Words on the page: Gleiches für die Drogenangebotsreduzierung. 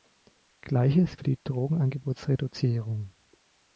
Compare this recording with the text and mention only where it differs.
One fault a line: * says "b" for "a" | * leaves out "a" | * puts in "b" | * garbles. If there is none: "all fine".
all fine